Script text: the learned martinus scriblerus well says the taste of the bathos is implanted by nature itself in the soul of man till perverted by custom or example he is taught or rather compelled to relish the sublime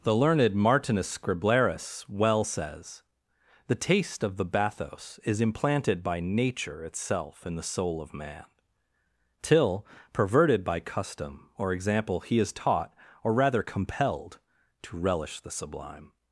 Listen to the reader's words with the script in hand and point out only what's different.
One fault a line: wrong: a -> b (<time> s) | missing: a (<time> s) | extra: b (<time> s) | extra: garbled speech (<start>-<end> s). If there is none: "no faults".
no faults